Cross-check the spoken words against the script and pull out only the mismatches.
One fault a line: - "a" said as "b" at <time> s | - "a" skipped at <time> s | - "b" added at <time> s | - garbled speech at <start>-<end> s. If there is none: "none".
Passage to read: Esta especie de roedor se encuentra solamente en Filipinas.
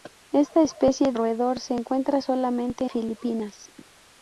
- "de" skipped at 1.1 s
- "en" skipped at 2.8 s